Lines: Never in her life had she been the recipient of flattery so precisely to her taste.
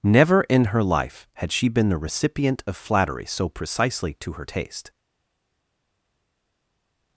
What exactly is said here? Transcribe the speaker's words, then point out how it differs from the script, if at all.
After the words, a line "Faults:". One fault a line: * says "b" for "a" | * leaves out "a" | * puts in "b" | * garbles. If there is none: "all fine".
Never in her life had she been the recipient of flattery so precisely to her taste.
Faults:
all fine